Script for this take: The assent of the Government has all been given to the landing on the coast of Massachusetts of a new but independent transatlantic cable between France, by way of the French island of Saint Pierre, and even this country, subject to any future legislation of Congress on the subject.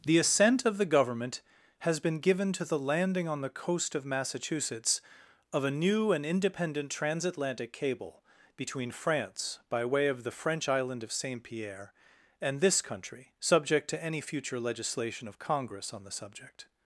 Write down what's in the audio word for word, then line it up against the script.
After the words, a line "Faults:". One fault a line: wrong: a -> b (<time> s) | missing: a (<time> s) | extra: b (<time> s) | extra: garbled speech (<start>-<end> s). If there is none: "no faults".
The assent of the Government has been given to the landing on the coast of Massachusetts of a new and independent transatlantic cable between France, by way of the French island of Saint Pierre, and this country, subject to any future legislation of Congress on the subject.
Faults:
missing: all (2.0 s)
wrong: but -> and (6.1 s)
missing: even (12.6 s)